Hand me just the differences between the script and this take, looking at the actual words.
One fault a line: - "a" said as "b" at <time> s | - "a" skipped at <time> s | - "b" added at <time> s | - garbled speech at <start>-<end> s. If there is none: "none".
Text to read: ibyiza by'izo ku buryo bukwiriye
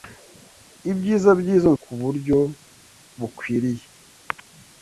none